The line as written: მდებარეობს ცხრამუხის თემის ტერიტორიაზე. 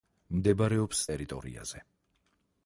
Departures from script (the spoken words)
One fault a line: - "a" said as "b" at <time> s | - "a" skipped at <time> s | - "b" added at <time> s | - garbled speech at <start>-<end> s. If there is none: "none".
- "ცხრამუხის თემის" skipped at 1.0 s